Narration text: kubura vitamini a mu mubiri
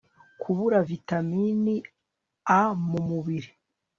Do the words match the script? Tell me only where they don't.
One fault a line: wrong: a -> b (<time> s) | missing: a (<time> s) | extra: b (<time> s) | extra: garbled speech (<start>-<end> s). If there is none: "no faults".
no faults